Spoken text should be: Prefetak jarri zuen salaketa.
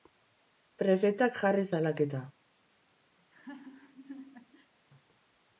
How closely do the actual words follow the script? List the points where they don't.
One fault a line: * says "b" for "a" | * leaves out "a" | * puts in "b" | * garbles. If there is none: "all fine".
* leaves out "zuen"